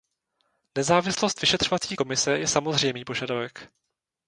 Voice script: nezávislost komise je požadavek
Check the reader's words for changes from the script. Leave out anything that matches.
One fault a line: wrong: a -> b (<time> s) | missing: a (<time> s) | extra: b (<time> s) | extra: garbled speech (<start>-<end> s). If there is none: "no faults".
extra: vyšetřovací (1.4 s)
extra: samozřejmý (2.5 s)